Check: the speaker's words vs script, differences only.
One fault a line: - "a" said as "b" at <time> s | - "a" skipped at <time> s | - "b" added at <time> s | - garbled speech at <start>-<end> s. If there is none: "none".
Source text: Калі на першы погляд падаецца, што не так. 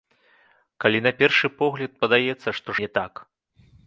none